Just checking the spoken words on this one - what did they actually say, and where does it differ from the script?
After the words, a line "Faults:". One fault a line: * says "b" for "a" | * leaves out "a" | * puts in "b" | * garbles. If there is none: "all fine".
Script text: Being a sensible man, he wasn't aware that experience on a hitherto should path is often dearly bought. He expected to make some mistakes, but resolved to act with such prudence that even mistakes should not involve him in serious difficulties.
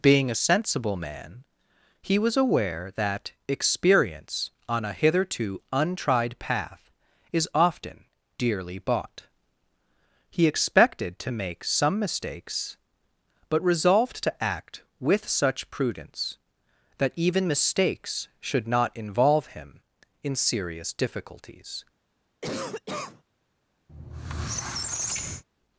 Being a sensible man, he was aware that experience on a hitherto untried path is often dearly bought. He expected to make some mistakes, but resolved to act with such prudence that even mistakes should not involve him in serious difficulties.
Faults:
* says "was" for "wasn't"
* says "untried" for "should"